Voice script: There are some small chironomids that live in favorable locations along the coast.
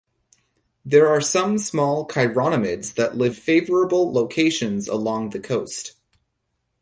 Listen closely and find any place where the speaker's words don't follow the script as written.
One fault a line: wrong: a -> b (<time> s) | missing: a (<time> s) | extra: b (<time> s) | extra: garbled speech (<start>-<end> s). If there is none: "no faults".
missing: in (3.4 s)